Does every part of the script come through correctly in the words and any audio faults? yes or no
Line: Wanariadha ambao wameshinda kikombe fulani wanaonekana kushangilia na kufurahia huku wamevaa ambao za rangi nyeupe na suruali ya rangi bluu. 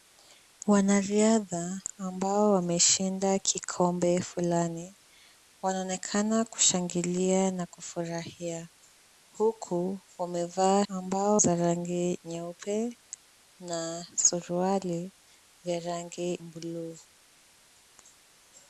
yes